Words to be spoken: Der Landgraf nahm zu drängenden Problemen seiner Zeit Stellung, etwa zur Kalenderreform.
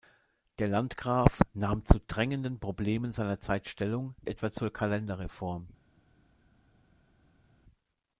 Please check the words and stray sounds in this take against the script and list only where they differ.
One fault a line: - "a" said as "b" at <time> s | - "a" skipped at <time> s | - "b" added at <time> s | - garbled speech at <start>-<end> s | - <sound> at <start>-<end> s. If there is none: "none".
none